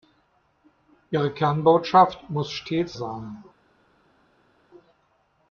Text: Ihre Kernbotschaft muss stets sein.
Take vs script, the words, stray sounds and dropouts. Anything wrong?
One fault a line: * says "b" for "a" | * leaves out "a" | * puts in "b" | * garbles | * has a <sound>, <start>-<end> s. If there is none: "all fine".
all fine